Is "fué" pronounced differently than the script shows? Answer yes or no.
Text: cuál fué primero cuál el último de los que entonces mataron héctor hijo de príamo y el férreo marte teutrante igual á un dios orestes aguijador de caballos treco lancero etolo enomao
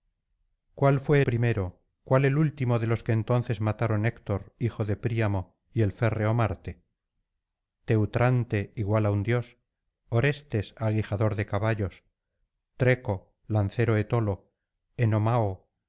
no